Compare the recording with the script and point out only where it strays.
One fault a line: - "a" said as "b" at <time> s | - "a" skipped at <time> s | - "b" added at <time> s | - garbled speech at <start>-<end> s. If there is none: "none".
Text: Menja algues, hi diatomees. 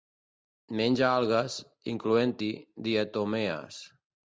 - "incloent" added at 1.9 s